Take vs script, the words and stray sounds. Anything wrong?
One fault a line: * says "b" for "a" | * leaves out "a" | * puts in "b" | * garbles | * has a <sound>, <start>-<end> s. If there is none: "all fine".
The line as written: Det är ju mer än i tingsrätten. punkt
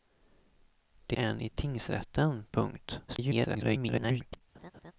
* leaves out "är ju mer"
* garbles
* has a laugh, 4.5-4.9 s